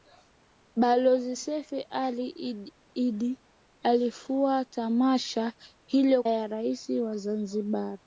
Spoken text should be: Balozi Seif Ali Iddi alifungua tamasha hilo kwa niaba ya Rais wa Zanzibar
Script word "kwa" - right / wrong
wrong